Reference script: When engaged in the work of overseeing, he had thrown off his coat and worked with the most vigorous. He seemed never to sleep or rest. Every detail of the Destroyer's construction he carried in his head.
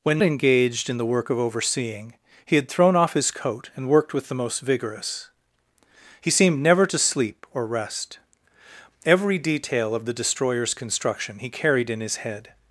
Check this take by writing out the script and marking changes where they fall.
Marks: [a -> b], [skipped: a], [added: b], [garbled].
When engaged in the work of overseeing, he had thrown off his coat and worked with the most vigorous. He seemed never to sleep or rest. Every detail of the Destroyer's construction he carried in his head.